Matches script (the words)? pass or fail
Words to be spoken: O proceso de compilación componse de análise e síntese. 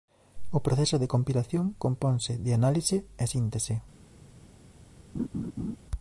pass